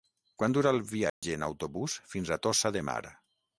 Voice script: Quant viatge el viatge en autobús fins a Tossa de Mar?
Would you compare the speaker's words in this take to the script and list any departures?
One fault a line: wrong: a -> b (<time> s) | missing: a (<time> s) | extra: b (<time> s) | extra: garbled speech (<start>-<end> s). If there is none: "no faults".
wrong: viatge -> dura (0.6 s)